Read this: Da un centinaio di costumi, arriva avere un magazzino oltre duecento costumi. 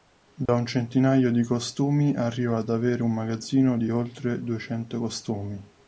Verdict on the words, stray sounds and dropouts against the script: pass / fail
fail